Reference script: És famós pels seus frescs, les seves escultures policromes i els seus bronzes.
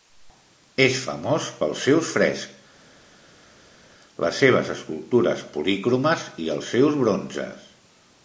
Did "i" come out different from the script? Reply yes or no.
no